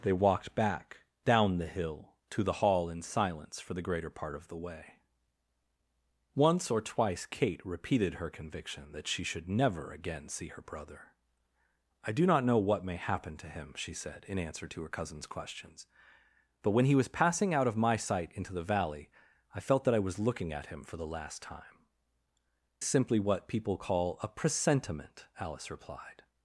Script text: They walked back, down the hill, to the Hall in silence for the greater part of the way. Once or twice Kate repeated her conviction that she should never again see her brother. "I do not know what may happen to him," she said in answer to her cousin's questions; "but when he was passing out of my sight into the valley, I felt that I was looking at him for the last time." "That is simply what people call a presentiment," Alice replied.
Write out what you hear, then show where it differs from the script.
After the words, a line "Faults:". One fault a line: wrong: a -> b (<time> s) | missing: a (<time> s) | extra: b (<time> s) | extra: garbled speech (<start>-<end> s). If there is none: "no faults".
They walked back, down the hill, to the Hall in silence for the greater part of the way. Once or twice Kate repeated her conviction that she should never again see her brother. "I do not know what may happen to him," she said in answer to her cousin's questions; "but when he was passing out of my sight into the valley, I felt that I was looking at him for the last time." "Simply what people call a presentiment," Alice replied.
Faults:
missing: That is (21.9 s)